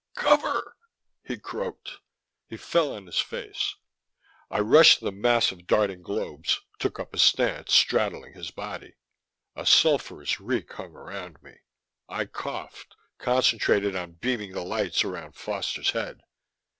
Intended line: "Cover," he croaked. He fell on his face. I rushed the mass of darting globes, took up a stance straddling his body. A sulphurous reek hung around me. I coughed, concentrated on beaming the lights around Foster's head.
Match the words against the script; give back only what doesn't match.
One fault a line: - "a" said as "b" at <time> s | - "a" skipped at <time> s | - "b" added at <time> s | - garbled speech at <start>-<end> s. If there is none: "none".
none